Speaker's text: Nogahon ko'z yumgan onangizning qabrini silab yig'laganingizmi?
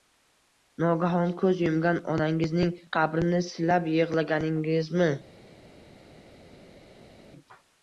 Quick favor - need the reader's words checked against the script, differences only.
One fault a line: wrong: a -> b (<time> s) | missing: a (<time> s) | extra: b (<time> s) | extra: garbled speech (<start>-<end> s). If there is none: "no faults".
no faults